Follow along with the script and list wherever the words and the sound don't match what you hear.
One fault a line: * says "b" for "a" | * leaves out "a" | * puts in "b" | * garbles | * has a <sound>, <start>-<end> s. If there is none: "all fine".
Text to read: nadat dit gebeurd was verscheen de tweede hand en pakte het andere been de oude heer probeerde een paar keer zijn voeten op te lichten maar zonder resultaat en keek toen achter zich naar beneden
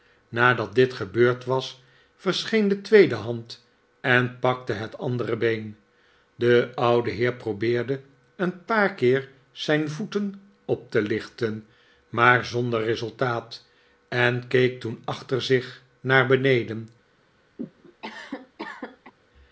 * has a cough, 17.6-19.1 s